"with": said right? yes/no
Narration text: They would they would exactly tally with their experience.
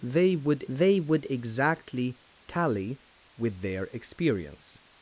yes